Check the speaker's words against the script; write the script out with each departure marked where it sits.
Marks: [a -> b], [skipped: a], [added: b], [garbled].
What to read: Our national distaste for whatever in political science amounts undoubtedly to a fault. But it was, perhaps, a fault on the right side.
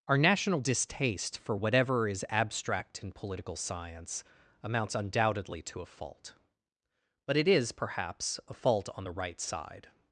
Our national distaste for whatever [added: is abstract] in political science amounts undoubtedly to a fault. But it [was, -> is] perhaps, a fault on the right side.